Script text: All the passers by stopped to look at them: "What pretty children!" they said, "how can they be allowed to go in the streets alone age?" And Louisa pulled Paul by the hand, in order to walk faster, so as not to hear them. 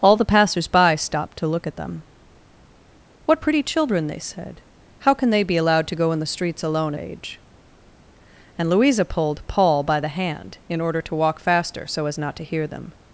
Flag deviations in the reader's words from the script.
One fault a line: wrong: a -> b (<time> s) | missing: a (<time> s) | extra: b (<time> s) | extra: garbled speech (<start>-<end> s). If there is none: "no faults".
no faults